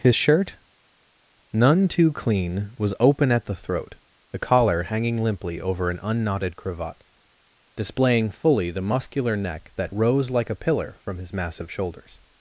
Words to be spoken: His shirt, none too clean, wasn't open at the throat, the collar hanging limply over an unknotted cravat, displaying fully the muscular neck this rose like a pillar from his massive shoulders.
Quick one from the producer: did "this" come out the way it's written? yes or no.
no